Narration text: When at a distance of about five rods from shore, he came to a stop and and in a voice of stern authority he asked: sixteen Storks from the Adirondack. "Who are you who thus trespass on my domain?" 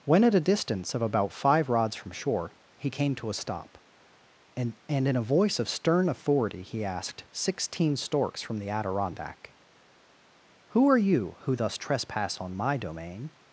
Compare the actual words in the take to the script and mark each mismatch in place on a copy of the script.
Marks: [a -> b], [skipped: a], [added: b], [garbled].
When at a distance of about five rods from shore, he came to a stop and and in a voice of stern authority he asked: sixteen Storks from the Adirondack. "Who are you who thus trespass on my domain?"